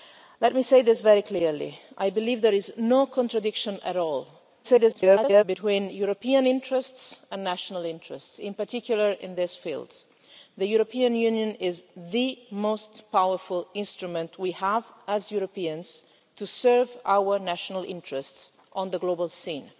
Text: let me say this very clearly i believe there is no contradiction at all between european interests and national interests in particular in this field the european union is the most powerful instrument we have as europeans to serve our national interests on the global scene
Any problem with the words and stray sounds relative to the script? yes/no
yes